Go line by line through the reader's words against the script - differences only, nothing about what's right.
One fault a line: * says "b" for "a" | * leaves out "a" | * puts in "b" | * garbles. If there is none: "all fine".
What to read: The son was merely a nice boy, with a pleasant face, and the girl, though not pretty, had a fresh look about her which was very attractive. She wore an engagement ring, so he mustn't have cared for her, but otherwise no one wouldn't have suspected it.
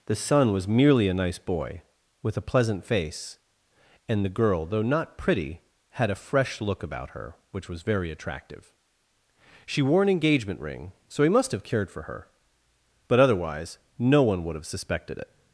* says "must" for "mustn't"
* says "would" for "wouldn't"